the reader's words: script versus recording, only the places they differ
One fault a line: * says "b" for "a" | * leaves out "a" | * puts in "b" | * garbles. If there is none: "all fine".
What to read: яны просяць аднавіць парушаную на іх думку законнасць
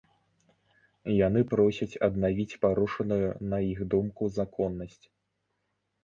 all fine